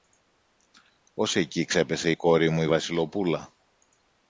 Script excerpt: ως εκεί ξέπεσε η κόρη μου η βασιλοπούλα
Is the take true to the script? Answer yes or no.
yes